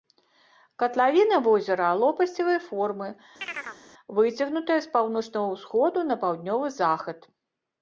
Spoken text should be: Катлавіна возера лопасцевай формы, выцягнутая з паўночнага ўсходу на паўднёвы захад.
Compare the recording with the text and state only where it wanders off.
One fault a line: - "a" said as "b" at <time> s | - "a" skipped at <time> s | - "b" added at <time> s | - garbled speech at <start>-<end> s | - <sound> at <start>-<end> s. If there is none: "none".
- chirp at 3.4-3.8 s